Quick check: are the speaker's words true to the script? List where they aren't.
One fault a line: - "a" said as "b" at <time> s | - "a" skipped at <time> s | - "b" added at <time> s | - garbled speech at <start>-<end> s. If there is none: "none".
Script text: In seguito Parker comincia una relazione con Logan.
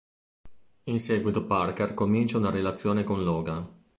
none